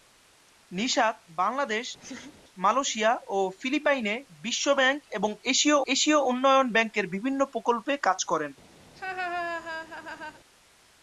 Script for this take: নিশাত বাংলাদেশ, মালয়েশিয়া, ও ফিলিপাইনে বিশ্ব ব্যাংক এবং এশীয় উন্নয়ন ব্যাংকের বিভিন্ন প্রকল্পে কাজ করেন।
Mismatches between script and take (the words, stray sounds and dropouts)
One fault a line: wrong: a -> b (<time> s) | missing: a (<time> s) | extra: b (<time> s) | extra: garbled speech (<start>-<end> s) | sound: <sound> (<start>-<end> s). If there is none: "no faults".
sound: laugh (2.0-2.4 s)
extra: এশীয় (5.9 s)
sound: laugh (8.9-10.4 s)